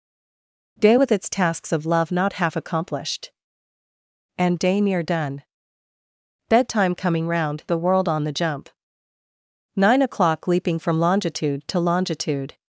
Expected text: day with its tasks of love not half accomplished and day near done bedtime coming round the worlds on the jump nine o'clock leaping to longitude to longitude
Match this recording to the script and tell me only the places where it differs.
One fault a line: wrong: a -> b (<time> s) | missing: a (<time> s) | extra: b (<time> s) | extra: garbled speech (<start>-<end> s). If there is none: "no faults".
wrong: worlds -> world (7.8 s)
wrong: to -> from (10.8 s)